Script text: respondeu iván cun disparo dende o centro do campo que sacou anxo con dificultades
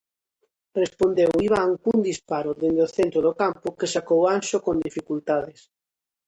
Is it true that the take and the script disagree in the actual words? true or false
false